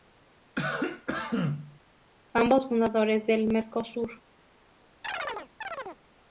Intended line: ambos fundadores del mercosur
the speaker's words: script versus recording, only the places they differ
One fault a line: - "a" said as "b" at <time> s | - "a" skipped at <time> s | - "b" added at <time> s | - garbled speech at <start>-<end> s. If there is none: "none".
none